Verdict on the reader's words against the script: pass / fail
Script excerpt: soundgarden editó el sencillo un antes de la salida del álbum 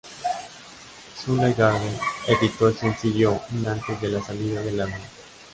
pass